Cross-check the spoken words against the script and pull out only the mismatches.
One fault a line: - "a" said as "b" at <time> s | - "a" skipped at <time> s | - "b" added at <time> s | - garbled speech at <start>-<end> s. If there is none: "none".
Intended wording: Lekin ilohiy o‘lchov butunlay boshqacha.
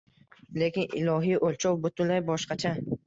none